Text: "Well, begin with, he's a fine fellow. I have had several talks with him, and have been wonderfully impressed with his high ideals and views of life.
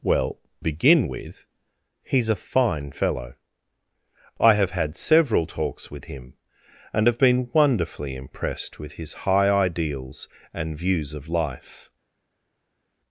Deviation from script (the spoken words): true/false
false